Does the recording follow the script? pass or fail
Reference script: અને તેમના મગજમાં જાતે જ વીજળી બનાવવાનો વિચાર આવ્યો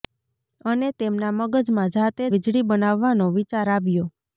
fail